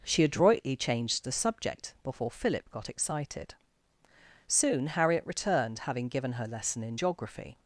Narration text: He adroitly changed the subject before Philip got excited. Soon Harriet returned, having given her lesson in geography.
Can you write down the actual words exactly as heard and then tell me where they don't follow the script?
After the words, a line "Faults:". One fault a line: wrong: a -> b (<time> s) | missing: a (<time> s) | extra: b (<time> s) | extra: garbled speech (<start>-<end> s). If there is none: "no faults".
She adroitly changed the subject before Philip got excited. Soon Harriet returned, having given her lesson in geography.
Faults:
wrong: He -> She (0.0 s)